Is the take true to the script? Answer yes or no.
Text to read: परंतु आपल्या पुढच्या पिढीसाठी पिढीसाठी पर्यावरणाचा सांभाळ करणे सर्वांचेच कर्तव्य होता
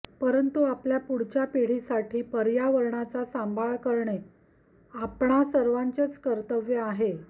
no